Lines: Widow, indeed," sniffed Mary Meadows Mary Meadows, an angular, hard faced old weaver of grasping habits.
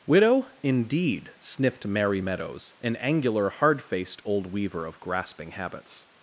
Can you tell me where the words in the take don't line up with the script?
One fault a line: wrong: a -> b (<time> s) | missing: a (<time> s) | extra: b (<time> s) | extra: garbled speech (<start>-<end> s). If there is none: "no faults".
missing: Mary Meadows (2.7 s)